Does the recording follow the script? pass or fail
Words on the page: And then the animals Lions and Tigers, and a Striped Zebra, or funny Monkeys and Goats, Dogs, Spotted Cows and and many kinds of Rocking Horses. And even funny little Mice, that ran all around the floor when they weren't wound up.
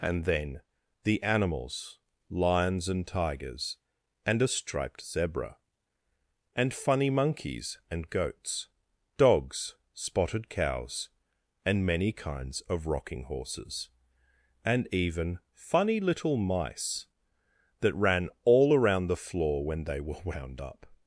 fail